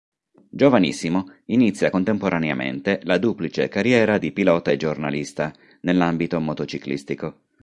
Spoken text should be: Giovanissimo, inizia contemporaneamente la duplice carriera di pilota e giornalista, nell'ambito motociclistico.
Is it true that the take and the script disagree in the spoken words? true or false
false